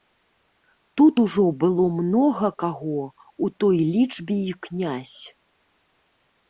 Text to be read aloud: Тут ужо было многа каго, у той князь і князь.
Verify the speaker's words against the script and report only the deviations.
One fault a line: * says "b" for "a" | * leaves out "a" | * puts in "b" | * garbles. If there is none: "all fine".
* says "лічбе" for "князь"